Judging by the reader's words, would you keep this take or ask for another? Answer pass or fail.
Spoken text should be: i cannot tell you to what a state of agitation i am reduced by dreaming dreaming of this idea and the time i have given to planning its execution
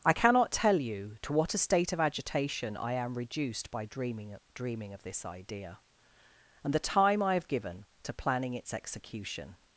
pass